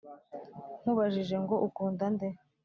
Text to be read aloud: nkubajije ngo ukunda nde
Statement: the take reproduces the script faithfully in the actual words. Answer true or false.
true